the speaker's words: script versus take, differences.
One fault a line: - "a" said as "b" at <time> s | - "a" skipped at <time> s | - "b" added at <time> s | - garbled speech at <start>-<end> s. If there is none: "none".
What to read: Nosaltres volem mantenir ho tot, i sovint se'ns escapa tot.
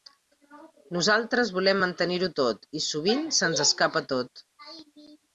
none